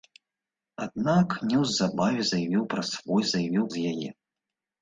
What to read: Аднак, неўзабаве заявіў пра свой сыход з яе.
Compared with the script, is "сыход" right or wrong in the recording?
wrong